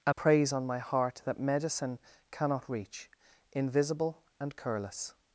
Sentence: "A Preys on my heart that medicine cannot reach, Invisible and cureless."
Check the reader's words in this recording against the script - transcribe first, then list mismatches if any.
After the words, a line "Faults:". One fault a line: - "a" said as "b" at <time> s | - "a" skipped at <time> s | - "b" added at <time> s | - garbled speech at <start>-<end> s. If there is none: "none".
"A Preys on my heart that medicine cannot reach, Invisible and cureless."
Faults:
none